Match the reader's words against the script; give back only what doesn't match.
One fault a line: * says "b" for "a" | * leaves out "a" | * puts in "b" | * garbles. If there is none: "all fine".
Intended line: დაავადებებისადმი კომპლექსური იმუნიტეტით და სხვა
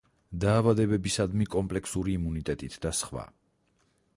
all fine